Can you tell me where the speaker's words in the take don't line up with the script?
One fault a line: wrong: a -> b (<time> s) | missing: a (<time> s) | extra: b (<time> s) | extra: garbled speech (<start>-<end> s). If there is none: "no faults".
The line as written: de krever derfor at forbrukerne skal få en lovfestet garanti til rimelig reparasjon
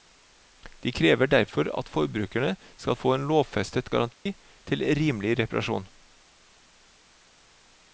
no faults